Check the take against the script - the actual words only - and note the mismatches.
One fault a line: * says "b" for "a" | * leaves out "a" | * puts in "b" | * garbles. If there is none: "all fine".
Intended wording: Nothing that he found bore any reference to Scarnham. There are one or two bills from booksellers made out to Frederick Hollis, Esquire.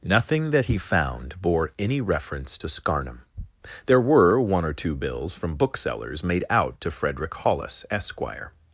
* says "were" for "are"